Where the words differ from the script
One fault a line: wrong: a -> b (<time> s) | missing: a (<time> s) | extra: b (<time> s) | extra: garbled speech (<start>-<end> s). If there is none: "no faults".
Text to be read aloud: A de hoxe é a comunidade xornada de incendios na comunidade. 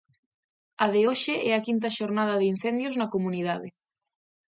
wrong: comunidade -> quinta (1.7 s)